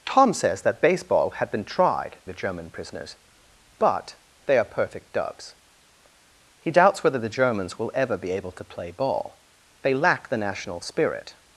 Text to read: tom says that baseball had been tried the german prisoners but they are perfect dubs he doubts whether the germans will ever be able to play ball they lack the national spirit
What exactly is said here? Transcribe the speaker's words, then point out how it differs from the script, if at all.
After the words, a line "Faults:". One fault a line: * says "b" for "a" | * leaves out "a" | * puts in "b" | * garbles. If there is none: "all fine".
tom says that baseball had been tried the german prisoners but they are perfect dubs he doubts whether the germans will ever be able to play ball they lack the national spirit
Faults:
all fine